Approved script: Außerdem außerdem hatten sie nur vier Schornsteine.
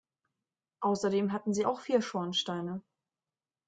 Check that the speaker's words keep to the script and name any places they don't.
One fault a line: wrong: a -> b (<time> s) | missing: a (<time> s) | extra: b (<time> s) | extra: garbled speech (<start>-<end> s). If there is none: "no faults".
missing: außerdem (1.3 s)
wrong: nur -> auch (1.6 s)